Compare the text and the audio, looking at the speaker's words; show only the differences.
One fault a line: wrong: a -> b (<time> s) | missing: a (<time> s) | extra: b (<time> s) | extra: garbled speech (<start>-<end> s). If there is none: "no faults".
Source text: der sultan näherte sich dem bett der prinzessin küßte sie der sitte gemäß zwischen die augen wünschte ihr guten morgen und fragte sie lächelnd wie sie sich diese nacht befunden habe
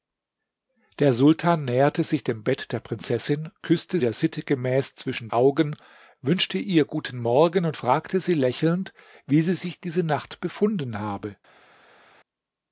missing: sie (4.0 s)
missing: die (5.3 s)